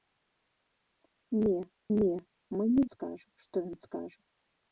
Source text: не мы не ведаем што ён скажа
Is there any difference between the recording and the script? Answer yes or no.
yes